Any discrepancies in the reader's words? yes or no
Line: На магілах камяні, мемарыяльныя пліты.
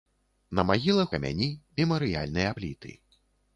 no